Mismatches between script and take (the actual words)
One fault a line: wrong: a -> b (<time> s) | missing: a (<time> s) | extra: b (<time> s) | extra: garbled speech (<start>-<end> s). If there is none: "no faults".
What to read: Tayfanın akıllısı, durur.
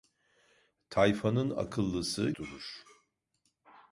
no faults